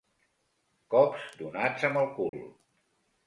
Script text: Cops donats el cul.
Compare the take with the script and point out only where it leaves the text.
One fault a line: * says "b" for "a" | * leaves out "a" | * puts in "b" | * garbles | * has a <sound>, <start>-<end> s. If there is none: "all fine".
* puts in "amb"
* has a dropout, 2.3-2.3 s